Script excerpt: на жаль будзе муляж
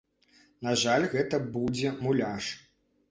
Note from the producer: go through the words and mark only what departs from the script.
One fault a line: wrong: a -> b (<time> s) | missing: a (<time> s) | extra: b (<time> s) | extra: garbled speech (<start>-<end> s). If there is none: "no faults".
extra: гэта (1.1 s)